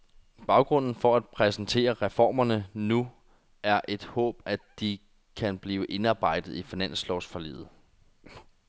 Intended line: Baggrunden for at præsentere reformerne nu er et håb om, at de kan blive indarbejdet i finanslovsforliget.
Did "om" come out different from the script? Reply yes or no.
yes